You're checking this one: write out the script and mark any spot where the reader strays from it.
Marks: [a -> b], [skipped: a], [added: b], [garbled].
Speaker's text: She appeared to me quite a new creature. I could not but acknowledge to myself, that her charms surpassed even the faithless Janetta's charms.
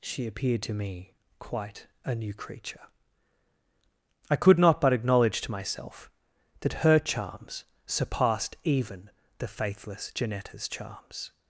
She appeared to me quite a new creature. I could not but acknowledge to myself, that her charms surpassed even the faithless Janetta's charms.